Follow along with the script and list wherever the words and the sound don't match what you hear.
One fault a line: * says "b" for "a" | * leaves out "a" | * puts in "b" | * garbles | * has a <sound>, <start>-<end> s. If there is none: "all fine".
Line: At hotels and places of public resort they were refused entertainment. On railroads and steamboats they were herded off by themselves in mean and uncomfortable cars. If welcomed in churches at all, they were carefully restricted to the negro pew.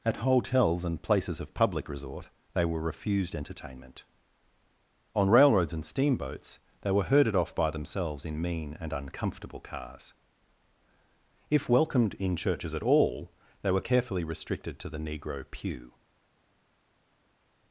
all fine